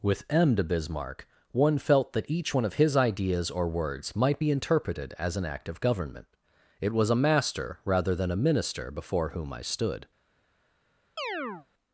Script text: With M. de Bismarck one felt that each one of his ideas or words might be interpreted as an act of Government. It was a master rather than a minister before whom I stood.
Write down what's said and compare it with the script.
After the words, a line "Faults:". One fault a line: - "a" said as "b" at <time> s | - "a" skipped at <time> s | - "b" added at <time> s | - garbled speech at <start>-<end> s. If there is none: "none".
With M. de Bismarck one felt that each one of his ideas or words might be interpreted as an act of Government. It was a master rather than a minister before whom I stood.
Faults:
none